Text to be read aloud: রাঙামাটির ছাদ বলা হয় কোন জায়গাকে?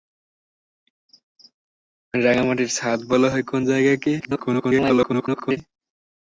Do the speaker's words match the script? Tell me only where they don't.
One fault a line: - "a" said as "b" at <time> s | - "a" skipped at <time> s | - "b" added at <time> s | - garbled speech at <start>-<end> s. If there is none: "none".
- garbled speech at 4.2-5.6 s